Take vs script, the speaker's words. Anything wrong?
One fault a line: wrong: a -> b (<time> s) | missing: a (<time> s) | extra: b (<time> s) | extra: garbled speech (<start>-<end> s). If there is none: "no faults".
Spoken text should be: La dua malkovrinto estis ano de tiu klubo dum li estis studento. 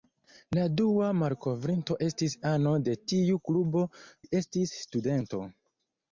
missing: dum (3.9 s)